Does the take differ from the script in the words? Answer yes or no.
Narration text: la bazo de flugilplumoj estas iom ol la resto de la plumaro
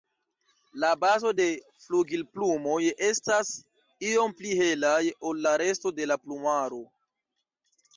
yes